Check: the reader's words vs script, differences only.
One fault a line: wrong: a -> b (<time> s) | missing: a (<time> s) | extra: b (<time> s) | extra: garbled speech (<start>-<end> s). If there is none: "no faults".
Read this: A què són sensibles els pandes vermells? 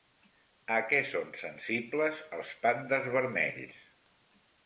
no faults